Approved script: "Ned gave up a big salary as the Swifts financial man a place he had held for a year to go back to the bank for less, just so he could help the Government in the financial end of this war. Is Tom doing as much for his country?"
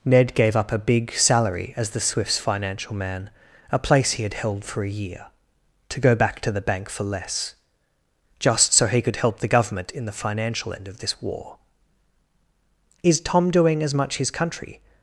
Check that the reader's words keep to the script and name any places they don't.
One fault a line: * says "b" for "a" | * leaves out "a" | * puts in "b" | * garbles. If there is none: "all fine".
* leaves out "for"